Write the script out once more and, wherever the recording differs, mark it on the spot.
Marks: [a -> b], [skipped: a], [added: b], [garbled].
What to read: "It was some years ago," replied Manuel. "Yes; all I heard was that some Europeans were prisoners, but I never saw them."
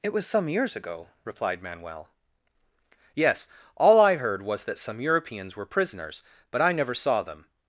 "It was some years ago," replied Manuel. "Yes; all I heard was that some Europeans were prisoners, but I never saw them."